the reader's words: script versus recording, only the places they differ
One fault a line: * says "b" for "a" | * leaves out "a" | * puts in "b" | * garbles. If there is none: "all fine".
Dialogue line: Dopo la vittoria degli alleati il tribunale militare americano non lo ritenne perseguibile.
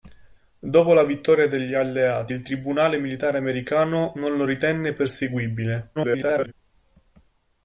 * garbles